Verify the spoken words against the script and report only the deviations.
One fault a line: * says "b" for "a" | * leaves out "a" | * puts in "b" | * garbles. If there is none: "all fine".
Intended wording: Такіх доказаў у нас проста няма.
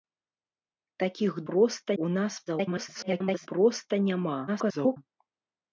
* says "проста" for "доказаў"
* garbles
* garbles